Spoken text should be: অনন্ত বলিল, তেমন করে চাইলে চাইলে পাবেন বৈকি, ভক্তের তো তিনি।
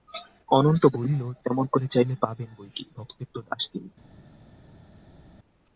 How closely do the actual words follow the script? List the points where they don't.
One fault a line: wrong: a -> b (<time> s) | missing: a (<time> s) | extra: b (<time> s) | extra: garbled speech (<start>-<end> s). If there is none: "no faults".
missing: চাইলে (2.1 s)
extra: দাস (3.4 s)